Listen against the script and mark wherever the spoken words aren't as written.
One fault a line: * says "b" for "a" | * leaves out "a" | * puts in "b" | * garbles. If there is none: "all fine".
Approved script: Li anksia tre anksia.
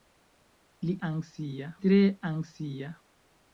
all fine